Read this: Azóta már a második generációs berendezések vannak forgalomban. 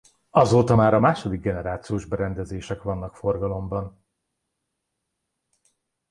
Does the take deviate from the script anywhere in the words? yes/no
no